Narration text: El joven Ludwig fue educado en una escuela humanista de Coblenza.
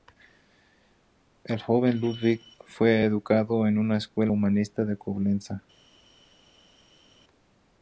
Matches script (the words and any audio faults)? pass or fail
pass